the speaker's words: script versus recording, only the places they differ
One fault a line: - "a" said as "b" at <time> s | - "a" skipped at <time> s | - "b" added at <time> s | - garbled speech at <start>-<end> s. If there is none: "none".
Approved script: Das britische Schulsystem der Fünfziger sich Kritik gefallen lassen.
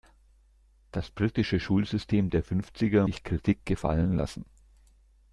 none